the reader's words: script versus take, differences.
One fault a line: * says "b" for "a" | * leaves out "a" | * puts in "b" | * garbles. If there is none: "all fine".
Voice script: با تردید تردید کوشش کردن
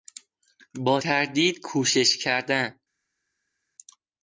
* leaves out "تردید"